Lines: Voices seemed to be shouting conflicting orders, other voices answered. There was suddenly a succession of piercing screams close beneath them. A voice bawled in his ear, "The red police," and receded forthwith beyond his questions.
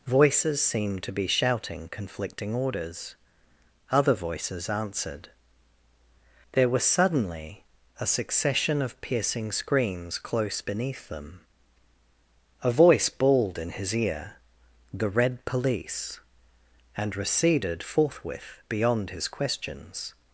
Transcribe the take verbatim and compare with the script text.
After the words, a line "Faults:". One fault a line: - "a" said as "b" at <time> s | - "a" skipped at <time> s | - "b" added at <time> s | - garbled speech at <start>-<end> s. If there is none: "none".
Voices seemed to be shouting conflicting orders, other voices answered. There was suddenly a succession of piercing screams close beneath them. A voice bawled in his ear, "The red police," and receded forthwith beyond his questions.
Faults:
none